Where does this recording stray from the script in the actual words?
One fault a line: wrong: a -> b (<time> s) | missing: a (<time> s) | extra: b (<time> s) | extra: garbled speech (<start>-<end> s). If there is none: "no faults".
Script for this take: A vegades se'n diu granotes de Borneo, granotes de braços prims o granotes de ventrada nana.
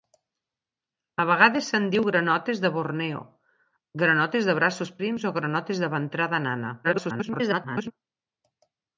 extra: garbled speech (6.8-7.9 s)